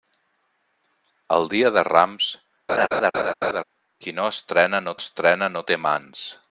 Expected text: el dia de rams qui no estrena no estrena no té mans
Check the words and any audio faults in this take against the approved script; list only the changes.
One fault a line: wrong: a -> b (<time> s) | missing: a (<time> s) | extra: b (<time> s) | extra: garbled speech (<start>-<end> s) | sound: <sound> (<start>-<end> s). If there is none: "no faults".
sound: laugh (2.7-3.6 s)